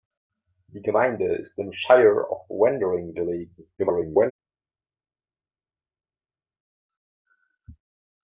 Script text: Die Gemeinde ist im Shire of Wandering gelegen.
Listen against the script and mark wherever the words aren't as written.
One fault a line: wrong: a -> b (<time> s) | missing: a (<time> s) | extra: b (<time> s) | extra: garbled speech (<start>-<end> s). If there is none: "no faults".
extra: garbled speech (3.8-4.3 s)